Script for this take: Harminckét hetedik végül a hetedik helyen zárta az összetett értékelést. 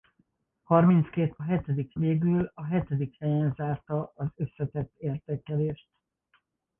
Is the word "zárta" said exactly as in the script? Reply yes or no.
yes